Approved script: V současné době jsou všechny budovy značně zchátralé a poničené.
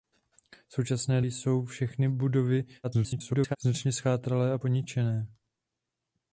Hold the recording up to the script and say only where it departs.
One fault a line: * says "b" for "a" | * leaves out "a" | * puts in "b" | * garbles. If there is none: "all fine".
* leaves out "době"
* garbles